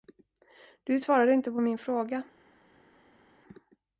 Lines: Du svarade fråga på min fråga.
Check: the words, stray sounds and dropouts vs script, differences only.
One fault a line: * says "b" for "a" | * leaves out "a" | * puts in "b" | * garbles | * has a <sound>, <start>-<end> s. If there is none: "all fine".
* says "inte" for "fråga"